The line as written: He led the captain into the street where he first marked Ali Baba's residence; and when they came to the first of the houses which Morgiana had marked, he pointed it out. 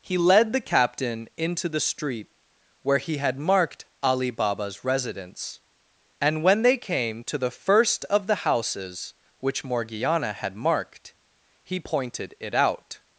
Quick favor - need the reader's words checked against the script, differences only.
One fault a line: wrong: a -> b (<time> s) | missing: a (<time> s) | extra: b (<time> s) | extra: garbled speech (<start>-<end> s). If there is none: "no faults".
wrong: first -> had (3.2 s)